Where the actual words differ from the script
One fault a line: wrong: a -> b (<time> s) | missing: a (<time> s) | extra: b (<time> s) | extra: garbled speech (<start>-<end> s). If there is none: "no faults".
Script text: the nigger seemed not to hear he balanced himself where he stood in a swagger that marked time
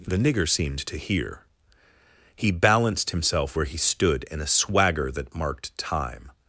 missing: not (0.8 s)